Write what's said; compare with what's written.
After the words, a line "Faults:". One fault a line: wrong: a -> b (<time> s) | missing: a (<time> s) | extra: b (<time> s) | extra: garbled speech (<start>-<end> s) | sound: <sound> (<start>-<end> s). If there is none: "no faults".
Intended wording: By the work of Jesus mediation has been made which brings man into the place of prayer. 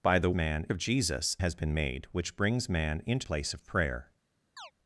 By the man of Jesus has been made which brings man into place of prayer.
Faults:
wrong: work -> man (0.3 s)
missing: mediation (1.4 s)
missing: the (3.3 s)
sound: chirp (4.6-4.7 s)